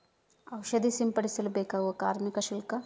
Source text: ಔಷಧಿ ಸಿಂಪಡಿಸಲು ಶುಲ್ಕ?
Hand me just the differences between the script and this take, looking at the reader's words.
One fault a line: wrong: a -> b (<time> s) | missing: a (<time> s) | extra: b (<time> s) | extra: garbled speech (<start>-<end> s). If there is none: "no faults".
extra: ಬೇಕಾಗುವ ಕಾರ್ಮಿಕ (1.5 s)